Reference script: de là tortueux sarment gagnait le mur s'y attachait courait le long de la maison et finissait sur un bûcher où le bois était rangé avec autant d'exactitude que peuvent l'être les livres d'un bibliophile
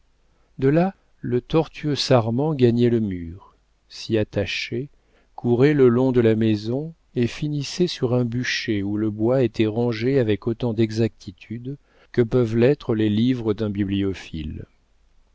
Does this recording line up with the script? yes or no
no